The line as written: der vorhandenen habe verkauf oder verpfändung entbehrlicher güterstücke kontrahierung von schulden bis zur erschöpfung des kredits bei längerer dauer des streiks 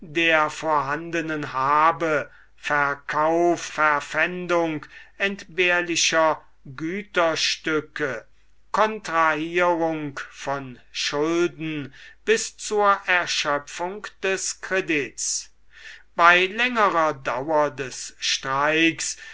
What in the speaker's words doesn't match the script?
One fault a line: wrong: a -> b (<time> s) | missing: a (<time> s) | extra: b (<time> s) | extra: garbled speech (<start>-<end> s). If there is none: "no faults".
missing: oder (3.7 s)